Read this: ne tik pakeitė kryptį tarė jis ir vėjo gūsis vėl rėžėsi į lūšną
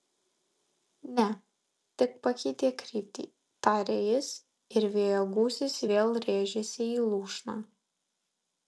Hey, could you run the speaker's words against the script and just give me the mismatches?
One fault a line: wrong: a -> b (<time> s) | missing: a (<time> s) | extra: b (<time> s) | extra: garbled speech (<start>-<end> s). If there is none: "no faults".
no faults